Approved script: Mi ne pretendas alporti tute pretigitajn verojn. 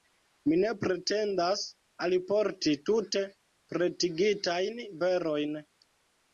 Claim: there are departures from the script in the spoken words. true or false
false